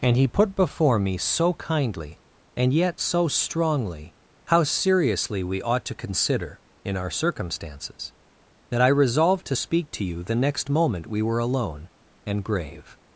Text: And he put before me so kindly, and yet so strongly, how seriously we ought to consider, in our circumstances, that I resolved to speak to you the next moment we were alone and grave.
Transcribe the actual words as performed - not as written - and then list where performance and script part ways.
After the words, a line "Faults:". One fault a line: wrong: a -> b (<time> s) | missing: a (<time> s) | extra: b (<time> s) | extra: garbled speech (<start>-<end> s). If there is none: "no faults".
And he put before me so kindly, and yet so strongly, how seriously we ought to consider, in our circumstances, that I resolved to speak to you the next moment we were alone and grave.
Faults:
no faults